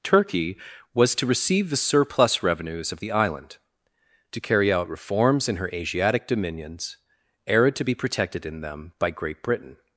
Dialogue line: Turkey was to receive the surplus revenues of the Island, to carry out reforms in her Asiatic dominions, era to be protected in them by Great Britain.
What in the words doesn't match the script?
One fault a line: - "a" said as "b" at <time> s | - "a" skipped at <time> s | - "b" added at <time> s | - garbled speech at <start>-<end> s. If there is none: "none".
none